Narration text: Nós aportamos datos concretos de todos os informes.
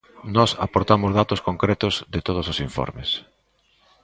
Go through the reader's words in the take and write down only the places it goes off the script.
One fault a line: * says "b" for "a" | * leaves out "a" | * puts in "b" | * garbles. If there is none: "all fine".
all fine